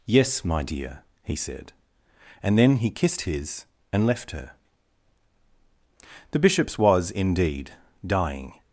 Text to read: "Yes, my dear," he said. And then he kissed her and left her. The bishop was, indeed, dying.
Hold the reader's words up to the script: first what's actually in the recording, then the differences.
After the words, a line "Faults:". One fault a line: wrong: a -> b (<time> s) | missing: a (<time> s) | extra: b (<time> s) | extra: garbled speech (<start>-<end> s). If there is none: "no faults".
"Yes, my dear," he said. And then he kissed his and left her. The bishops was, indeed, dying.
Faults:
wrong: her -> his (3.2 s)
wrong: bishop -> bishops (6.4 s)